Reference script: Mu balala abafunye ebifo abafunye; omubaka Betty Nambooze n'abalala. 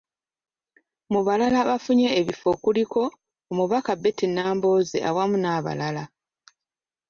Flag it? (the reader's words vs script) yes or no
yes